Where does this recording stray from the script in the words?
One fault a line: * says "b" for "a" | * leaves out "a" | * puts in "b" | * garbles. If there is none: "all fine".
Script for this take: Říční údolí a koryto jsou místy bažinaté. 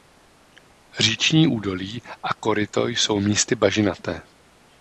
all fine